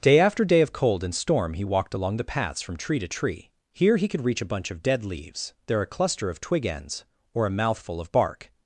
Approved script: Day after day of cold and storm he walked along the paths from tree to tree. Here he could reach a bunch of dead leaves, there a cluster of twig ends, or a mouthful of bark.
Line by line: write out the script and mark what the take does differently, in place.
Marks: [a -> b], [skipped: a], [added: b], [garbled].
Day after day of cold and storm he walked along the paths from tree to tree. Here he could reach a bunch of dead leaves, there a cluster of twig ends, or a mouthful of bark.